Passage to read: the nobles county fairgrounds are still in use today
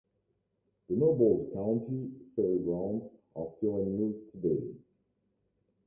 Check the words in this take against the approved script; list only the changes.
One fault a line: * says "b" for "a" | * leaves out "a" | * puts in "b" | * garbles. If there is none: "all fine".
all fine